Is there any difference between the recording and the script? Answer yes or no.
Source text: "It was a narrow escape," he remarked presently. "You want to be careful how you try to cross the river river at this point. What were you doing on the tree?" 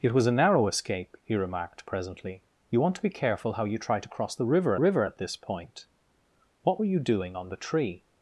no